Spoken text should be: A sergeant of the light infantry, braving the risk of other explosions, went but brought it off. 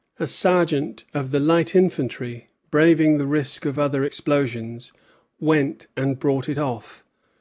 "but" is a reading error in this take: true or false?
true